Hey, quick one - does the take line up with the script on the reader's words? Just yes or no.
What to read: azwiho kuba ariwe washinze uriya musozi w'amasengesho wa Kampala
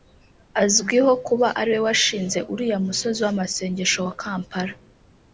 yes